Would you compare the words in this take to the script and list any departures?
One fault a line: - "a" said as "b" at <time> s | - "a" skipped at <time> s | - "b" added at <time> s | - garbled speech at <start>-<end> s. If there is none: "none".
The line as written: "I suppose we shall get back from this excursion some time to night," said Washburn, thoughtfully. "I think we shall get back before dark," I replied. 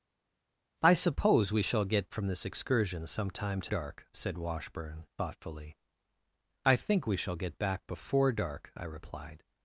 - "back" skipped at 2.1 s
- "night" said as "dark" at 3.7 s